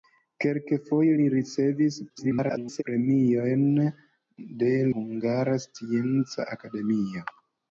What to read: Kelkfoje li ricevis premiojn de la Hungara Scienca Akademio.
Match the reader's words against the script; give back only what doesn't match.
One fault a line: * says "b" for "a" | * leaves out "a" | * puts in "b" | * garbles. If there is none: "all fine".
* garbles
* leaves out "la"